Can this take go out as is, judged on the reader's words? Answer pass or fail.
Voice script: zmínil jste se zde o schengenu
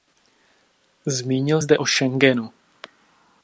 fail